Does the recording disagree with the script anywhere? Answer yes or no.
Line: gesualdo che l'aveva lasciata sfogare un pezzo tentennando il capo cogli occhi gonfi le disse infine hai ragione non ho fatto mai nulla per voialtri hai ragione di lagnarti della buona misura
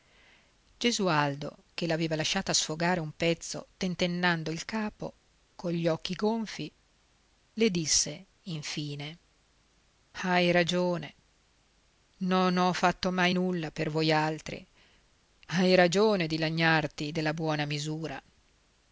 no